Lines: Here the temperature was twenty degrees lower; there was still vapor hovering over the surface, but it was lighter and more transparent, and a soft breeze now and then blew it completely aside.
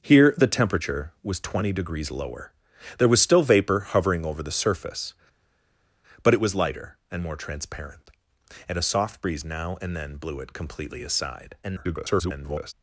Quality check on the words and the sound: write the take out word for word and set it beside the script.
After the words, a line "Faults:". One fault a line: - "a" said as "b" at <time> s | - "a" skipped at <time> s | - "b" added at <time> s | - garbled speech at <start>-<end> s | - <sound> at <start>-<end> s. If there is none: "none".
Here the temperature was twenty degrees lower; there was still vapor hovering over the surface, but it was lighter and more transparent, and a soft breeze now and then blew it completely aside. [garbled]
Faults:
- garbled speech at 11.6-12.7 s